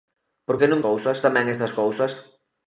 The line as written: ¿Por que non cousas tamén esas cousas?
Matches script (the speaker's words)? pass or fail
pass